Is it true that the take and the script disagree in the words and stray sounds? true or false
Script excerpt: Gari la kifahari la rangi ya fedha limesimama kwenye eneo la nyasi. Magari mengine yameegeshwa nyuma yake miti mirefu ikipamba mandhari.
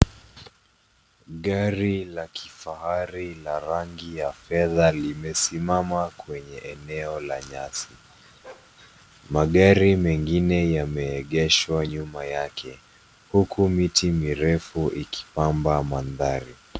true